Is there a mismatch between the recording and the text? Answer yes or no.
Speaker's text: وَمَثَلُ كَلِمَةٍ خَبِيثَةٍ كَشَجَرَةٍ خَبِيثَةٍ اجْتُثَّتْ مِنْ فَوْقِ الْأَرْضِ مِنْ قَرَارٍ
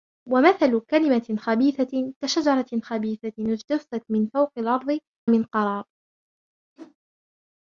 no